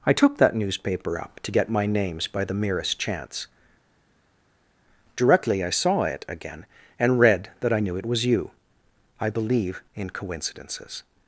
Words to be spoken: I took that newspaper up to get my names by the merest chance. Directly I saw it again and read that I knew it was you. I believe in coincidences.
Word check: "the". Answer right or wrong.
right